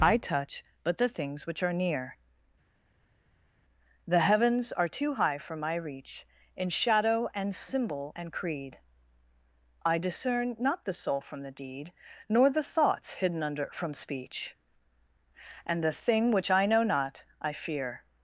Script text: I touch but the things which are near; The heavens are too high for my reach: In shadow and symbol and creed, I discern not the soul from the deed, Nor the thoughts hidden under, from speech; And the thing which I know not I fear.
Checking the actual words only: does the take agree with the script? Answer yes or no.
yes